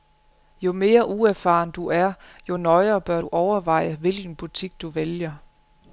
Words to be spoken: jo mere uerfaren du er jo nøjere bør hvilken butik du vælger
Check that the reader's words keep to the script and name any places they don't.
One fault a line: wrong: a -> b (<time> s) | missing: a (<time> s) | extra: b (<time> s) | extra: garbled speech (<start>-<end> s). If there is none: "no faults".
extra: du overveje (3.2 s)